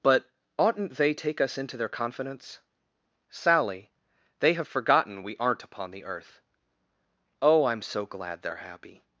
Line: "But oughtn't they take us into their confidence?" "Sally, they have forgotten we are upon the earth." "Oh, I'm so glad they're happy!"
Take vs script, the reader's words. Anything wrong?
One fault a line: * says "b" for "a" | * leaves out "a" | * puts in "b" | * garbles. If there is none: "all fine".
* says "aren't" for "are"